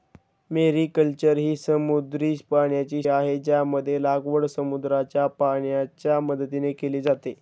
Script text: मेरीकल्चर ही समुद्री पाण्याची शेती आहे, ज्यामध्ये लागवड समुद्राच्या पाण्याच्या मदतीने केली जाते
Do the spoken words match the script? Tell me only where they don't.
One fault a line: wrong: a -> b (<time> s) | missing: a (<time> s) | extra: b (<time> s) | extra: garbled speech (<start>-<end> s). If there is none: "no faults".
missing: शेती (3.0 s)